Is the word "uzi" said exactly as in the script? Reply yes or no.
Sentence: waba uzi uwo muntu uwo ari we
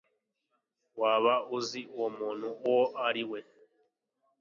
yes